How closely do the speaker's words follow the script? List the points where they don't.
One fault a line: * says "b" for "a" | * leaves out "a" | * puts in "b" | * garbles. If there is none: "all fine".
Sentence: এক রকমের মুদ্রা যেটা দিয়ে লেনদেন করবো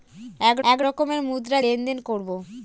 * puts in "এক"
* leaves out "যেটা দিয়ে"